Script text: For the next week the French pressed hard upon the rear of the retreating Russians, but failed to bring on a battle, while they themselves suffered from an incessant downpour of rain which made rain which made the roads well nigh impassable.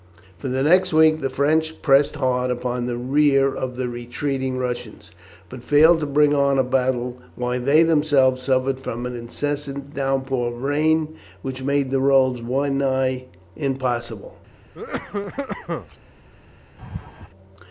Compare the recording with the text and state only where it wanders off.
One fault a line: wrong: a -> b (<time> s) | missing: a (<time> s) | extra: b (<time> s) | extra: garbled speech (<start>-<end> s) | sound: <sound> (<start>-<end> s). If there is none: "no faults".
missing: rain which made (11.9 s)
sound: cough (14.7-16.0 s)
sound: laugh (16.8-17.3 s)